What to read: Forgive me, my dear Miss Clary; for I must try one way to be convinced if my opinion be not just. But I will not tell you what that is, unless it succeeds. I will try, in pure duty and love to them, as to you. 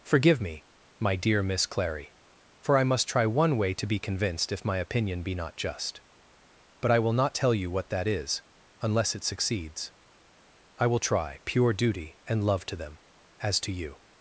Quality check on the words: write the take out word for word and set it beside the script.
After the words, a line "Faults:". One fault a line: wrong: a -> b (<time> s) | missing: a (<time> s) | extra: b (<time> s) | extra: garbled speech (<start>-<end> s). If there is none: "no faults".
Forgive me, my dear Miss Clary; for I must try one way to be convinced if my opinion be not just. But I will not tell you what that is, unless it succeeds. I will try, pure duty and love to them, as to you.
Faults:
missing: in (11.4 s)